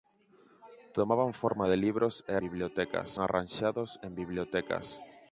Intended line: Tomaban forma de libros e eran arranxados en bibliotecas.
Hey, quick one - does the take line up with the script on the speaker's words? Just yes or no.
no